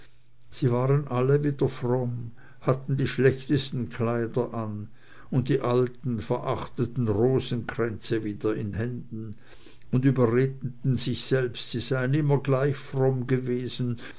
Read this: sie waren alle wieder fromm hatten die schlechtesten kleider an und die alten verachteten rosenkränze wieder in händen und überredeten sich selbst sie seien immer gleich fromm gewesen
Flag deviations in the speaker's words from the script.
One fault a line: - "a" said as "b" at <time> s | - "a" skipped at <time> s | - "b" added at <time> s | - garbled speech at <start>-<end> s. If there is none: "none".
none